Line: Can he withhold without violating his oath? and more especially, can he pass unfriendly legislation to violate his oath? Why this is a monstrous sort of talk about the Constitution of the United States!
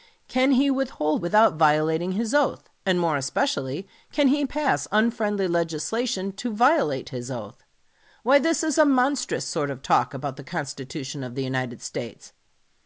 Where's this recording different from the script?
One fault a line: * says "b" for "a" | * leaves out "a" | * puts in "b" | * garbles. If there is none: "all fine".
all fine